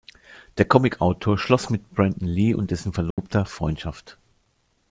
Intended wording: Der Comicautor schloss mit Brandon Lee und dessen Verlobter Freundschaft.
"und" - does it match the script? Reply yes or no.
yes